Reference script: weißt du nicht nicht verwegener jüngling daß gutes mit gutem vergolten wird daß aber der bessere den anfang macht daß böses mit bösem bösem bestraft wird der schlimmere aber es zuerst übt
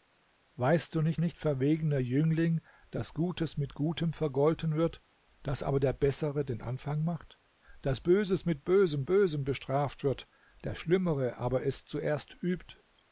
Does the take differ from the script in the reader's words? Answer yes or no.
no